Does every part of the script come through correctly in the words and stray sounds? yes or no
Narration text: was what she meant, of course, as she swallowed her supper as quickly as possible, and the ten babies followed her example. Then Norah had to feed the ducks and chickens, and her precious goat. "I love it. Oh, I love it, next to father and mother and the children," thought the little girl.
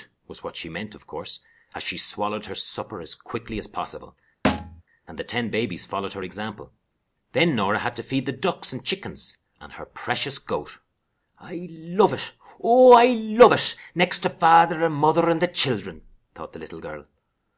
no